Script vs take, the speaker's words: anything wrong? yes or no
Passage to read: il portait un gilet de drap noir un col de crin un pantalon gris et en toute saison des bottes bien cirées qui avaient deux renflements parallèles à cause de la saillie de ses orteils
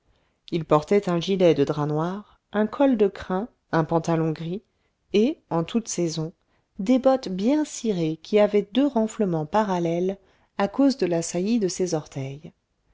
no